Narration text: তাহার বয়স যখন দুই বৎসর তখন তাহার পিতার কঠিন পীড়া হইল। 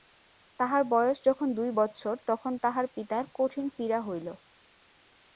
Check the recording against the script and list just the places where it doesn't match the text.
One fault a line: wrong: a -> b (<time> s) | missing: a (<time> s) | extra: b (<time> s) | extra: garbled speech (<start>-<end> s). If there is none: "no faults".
no faults